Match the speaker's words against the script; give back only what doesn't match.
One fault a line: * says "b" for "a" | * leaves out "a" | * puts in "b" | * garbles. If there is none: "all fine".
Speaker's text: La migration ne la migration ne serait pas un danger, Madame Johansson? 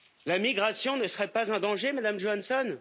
* leaves out "la migration ne"